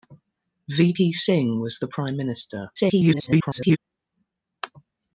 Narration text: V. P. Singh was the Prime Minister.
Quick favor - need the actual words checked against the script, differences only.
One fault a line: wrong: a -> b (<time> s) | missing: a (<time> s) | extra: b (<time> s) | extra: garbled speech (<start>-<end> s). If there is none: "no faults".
extra: garbled speech (2.8-3.8 s)